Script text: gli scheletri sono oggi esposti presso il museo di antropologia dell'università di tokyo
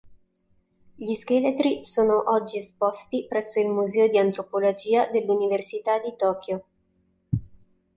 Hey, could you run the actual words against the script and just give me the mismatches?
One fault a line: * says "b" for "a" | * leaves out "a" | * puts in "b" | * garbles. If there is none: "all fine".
all fine